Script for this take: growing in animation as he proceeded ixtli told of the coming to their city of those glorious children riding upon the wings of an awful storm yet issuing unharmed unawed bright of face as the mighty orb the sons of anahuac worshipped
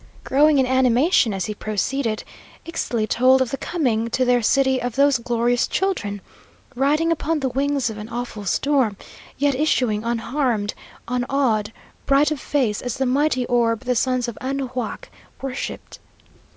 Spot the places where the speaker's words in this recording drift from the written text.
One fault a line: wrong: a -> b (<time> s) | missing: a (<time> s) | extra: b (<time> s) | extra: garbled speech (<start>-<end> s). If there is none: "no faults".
no faults